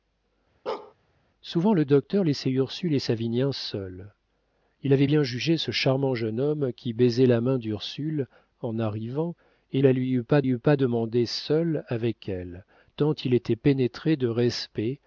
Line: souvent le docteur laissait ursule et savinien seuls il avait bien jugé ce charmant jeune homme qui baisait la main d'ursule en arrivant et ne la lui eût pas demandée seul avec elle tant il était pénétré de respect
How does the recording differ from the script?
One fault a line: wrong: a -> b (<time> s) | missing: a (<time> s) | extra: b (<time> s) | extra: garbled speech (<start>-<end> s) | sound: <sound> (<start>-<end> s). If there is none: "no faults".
sound: bark (0.7-0.9 s)
missing: ne (9.8 s)
extra: eût pas (10.5 s)